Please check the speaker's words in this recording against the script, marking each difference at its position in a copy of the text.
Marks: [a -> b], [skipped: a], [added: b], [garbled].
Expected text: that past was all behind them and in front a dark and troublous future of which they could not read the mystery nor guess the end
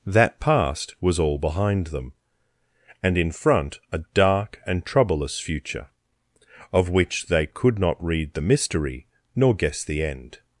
that past was all behind them and in front a dark and troublous future of which they could not read the mystery nor guess the end